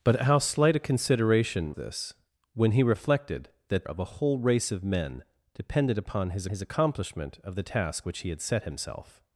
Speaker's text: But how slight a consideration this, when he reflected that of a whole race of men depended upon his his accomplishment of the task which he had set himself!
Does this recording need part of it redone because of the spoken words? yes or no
no